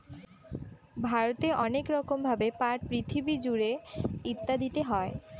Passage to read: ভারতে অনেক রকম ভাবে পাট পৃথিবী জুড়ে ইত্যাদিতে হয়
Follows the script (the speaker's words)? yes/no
yes